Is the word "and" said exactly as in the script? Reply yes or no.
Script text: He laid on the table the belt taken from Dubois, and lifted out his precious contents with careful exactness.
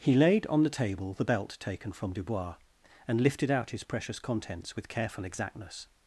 yes